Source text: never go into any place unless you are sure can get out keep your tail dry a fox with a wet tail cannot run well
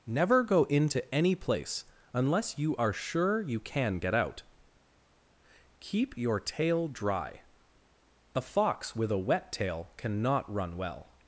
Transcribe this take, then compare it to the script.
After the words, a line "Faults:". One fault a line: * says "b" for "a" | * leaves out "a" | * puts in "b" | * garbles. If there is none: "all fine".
never go into any place unless you are sure you can get out keep your tail dry a fox with a wet tail cannot run well
Faults:
* puts in "you"